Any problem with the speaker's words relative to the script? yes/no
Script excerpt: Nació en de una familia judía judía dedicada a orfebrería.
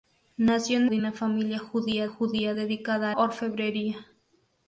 no